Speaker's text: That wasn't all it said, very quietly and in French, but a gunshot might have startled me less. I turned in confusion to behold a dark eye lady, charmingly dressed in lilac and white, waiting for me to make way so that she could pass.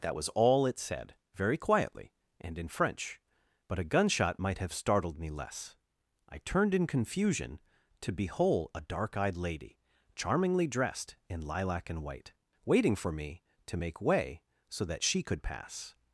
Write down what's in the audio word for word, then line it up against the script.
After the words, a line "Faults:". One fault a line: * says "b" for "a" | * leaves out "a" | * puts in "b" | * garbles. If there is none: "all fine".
That was all it said, very quietly and in French, but a gunshot might have startled me less. I turned in confusion to behold a dark eyed lady, charmingly dressed in lilac and white, waiting for me to make way so that she could pass.
Faults:
* says "was" for "wasn't"
* says "eyed" for "eye"